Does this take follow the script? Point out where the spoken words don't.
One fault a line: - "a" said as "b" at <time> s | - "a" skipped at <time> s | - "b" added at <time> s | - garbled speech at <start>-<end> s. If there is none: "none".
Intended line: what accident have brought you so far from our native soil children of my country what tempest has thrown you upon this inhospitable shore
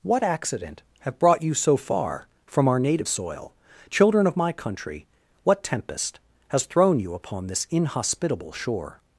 none